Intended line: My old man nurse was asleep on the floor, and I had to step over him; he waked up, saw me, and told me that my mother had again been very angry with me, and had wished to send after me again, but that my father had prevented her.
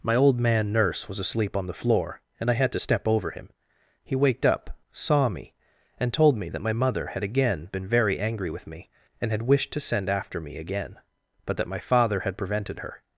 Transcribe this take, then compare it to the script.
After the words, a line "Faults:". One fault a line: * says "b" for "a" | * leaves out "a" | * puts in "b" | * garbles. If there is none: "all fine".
My old man nurse was asleep on the floor, and I had to step over him; he waked up, saw me, and told me that my mother had again been very angry with me, and had wished to send after me again, but that my father had prevented her.
Faults:
all fine